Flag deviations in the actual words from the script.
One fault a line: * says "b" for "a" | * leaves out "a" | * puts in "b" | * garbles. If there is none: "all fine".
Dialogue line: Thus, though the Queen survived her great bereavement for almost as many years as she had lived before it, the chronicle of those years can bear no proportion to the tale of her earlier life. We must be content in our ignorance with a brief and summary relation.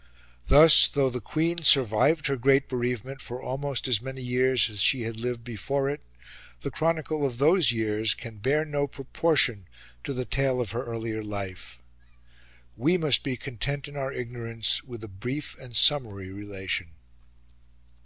all fine